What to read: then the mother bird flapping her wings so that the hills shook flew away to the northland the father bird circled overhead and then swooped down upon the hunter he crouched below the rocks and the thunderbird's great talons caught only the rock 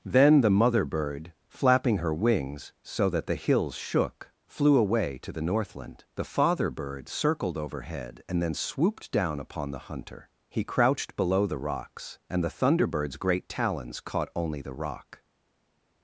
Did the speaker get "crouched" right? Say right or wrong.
right